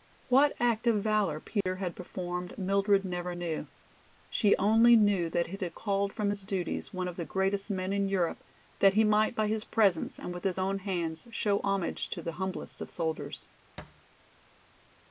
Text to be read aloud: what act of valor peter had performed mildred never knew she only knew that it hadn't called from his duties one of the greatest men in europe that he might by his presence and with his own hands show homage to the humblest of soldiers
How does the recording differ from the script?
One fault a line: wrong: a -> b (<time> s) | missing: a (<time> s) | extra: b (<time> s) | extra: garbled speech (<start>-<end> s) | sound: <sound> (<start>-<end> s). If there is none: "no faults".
sound: dropout (1.6-1.7 s)
wrong: hadn't -> had (5.6 s)
sound: thud (13.8-14.0 s)